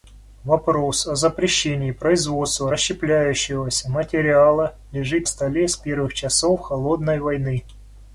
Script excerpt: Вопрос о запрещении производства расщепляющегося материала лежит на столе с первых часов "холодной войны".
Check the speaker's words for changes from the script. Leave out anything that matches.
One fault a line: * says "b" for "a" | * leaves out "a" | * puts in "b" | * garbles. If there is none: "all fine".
* leaves out "на"